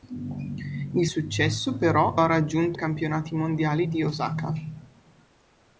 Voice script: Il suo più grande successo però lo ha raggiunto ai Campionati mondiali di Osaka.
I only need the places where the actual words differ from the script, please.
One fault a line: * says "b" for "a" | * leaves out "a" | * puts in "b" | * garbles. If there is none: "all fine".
* leaves out "suo più grande"
* leaves out "lo"
* leaves out "ai"